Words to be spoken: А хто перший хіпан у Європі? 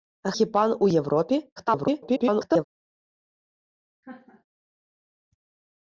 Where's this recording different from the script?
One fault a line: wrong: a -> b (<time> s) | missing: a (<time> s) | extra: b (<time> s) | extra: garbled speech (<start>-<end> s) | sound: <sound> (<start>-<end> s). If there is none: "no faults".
missing: хто перший (0.3 s)
extra: garbled speech (1.6-2.6 s)
sound: laugh (4.0-4.4 s)